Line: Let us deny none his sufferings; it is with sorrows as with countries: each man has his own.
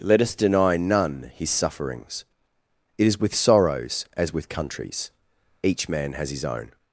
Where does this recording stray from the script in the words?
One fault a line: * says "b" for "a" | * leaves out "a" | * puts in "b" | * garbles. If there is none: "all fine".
all fine